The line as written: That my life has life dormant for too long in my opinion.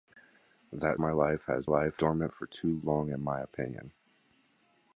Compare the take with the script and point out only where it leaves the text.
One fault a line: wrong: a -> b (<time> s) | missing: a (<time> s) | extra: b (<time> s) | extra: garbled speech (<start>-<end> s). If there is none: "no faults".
no faults